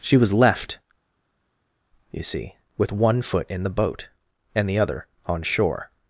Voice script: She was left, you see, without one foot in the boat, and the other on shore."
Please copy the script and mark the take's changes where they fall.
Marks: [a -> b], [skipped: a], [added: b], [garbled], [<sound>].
She was left, you see, [without -> with] one foot in the boat, and the other on shore."